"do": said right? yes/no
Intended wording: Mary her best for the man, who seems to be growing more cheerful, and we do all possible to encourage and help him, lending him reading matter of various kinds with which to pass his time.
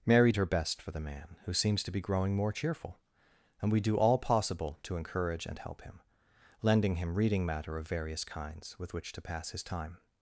yes